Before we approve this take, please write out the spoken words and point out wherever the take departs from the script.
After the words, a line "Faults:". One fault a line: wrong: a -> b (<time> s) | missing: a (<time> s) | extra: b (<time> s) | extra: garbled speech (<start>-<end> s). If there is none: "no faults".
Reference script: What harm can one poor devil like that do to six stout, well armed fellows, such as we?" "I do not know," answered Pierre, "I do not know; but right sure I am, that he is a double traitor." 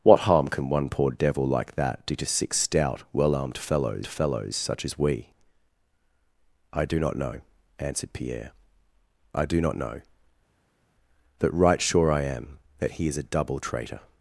What harm can one poor devil like that do to six stout, well armed fellows fellows, such as we?" "I do not know," answered Pierre, "I do not know; but right sure I am, that he is a double traitor."
Faults:
extra: fellows (4.1 s)